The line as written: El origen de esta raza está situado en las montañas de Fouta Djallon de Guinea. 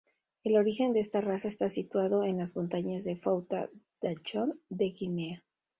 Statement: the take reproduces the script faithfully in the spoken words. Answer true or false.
true